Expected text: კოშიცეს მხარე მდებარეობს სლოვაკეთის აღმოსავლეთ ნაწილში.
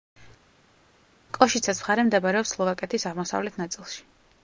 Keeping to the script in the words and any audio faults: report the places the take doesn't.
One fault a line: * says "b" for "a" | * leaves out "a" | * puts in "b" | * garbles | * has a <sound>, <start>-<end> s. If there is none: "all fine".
all fine